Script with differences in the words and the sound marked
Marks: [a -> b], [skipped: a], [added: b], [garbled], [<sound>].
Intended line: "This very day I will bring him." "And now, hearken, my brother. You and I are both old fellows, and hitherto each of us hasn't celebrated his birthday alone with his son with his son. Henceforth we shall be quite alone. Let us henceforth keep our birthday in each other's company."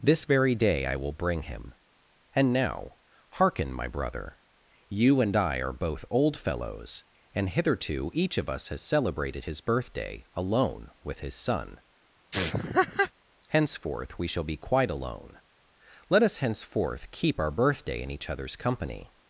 "This very day I will bring him." "And now, hearken, my brother. You and I are both old fellows, and hitherto each of us [hasn't -> has] celebrated his birthday alone with his son [skipped: with his son.] [laugh] Henceforth we shall be quite alone. Let us henceforth keep our birthday in each other's company."